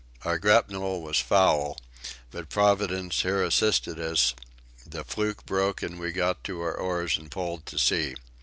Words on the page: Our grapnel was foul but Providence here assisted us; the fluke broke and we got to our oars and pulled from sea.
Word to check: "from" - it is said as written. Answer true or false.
false